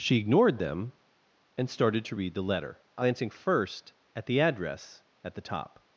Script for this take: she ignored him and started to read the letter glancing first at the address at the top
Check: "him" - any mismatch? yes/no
yes